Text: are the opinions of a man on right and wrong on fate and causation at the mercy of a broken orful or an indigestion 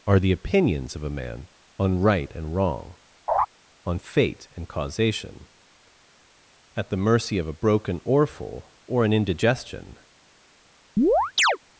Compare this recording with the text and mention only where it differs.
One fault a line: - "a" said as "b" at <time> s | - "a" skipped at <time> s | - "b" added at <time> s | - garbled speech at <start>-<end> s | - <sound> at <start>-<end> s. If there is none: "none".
- laugh at 3.3-3.5 s
- chirp at 11.0-11.6 s